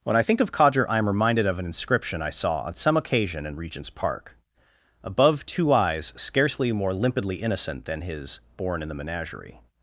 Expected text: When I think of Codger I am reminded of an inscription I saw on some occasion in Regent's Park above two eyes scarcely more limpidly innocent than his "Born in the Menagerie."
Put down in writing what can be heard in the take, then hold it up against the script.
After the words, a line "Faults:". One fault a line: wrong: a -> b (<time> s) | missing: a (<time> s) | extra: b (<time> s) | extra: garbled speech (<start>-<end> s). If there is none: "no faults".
When I think of Codger I am reminded of an inscription I saw on some occasion in Regent's Park above two eyes scarcely more limpidly innocent than his "Born in the Menagerie."
Faults:
no faults